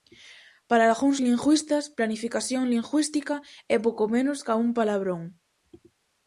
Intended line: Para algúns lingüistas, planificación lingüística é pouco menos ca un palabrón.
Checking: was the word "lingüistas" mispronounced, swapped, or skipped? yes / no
no